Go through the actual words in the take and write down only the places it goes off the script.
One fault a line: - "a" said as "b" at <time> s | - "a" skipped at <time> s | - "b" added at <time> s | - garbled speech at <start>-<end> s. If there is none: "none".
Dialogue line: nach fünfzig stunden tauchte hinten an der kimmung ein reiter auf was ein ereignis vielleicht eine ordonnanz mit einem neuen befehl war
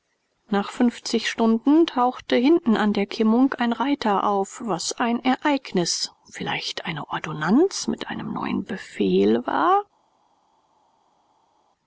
none